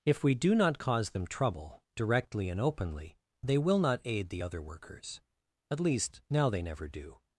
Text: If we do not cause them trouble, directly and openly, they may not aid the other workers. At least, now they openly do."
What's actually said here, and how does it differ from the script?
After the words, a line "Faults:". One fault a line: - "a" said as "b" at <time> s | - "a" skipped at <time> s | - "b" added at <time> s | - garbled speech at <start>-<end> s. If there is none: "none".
If we do not cause them trouble, directly and openly, they will not aid the other workers. At least, now they never do."
Faults:
- "may" said as "will" at 3.6 s
- "openly" said as "never" at 6.6 s